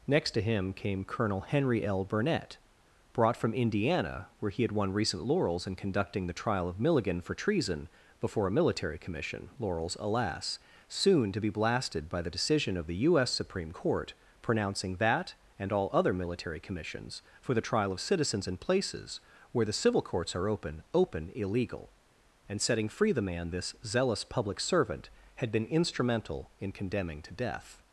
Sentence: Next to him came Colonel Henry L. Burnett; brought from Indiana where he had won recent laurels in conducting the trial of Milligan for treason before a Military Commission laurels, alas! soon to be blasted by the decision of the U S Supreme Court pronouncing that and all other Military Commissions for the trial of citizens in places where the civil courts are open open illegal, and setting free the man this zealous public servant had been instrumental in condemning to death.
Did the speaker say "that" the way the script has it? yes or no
yes